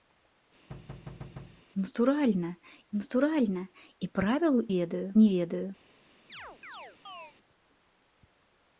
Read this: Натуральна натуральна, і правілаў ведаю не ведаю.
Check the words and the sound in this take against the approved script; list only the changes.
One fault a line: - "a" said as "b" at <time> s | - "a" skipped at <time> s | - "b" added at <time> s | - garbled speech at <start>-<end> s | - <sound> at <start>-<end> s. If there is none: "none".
- thud at 0.7-1.6 s
- chirp at 6.3-7.3 s